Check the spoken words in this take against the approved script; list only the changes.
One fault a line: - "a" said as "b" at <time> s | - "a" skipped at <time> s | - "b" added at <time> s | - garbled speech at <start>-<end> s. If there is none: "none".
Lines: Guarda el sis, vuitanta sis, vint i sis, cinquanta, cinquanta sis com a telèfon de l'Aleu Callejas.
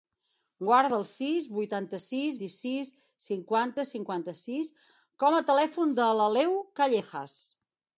- "vint" skipped at 2.4 s